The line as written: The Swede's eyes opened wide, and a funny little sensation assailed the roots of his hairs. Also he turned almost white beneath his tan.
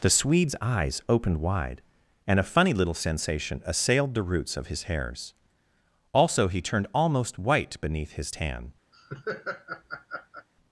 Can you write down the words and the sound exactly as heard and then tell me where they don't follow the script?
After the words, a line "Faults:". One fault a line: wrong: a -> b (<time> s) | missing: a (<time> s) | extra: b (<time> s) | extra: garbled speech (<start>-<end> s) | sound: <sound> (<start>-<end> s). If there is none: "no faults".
The Swede's eyes opened wide, and a funny little sensation assailed the roots of his hairs. Also he turned almost white beneath his tan.
Faults:
sound: laugh (8.9-10.5 s)